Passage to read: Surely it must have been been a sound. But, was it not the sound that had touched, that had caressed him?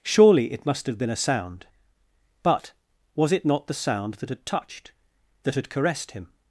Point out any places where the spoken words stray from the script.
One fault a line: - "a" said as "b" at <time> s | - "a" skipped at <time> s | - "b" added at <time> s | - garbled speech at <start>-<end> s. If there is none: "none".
- "been" skipped at 1.1 s